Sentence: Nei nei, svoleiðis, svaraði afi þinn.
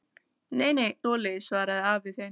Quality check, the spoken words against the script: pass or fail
pass